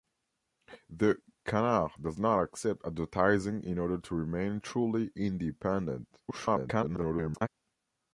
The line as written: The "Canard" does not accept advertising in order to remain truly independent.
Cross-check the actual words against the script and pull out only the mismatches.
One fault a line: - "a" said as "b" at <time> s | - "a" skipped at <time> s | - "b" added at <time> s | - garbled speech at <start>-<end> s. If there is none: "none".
- garbled speech at 6.3-7.5 s